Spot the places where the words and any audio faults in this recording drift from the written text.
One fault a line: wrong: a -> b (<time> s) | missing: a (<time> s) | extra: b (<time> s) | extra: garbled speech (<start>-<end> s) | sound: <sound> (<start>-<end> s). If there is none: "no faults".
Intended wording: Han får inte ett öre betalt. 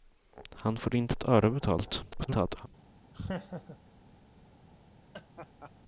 extra: garbled speech (2.1-2.7 s)
sound: laugh (3.1-3.8 s)
sound: laugh (5.1-5.7 s)